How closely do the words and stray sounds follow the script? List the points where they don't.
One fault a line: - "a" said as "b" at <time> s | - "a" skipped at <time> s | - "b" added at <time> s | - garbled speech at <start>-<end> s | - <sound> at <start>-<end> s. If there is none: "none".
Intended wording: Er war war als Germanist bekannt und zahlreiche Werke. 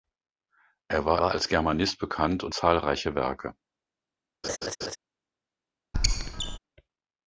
- laugh at 4.4-5.0 s
- squeak at 5.9-6.6 s